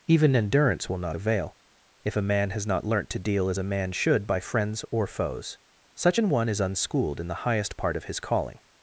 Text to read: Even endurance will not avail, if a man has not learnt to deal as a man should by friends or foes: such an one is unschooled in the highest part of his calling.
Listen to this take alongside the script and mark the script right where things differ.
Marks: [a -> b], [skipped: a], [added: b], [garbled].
Even endurance will not avail, if a man has not learnt to deal as a man should by friends or foes: such an one is unschooled in the highest part of his calling.